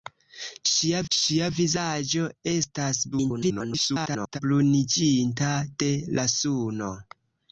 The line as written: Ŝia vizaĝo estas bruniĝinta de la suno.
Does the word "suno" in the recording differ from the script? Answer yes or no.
no